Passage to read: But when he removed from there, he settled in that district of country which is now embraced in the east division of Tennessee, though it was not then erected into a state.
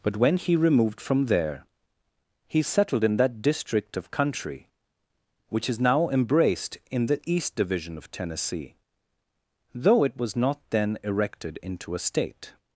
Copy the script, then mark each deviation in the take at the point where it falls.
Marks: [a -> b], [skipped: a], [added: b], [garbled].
But when he removed from there, he settled in that district of country which is now embraced in the east division of Tennessee, though it was not then erected into a state.